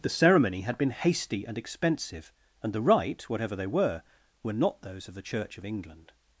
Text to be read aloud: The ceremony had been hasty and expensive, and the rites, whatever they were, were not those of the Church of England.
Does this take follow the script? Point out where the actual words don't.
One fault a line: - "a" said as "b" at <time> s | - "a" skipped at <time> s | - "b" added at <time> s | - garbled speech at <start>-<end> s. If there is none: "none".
- "rites" said as "rite" at 2.8 s